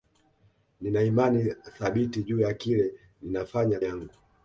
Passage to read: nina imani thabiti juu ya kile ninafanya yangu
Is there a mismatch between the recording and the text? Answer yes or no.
no